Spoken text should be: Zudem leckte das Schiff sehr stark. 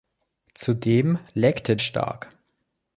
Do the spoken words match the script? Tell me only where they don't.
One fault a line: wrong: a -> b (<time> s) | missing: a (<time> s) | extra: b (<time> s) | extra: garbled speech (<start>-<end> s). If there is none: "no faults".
missing: das Schiff sehr (1.8 s)